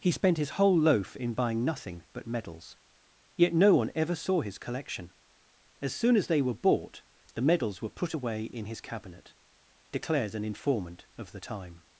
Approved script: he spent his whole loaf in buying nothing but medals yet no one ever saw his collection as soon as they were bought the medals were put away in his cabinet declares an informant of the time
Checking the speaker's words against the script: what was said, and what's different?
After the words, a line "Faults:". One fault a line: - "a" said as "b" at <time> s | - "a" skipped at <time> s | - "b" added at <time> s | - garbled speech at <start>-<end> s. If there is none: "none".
he spent his whole loaf in buying nothing but medals yet no one ever saw his collection as soon as they were bought the medals were put away in his cabinet declares an informant of the time
Faults:
none